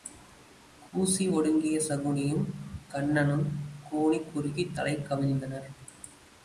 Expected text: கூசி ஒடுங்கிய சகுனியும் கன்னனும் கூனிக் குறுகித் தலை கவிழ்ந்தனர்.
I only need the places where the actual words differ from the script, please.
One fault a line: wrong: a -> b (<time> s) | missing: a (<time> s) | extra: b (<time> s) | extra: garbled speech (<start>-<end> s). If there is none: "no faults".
no faults